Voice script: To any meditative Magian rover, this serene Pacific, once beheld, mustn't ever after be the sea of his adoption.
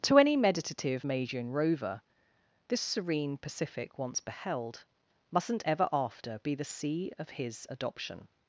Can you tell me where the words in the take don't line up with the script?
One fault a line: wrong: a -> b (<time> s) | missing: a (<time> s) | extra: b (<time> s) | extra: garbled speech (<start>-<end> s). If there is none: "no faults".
no faults